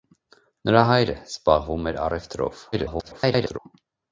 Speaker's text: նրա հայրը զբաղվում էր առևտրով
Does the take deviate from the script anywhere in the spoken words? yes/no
yes